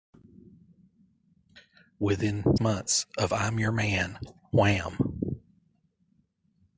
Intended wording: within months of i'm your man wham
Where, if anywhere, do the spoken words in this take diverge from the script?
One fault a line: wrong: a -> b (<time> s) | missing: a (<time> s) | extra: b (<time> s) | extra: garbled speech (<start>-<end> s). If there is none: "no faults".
no faults